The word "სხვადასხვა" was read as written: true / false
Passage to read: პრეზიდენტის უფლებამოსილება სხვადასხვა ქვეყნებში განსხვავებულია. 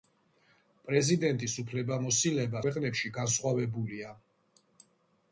false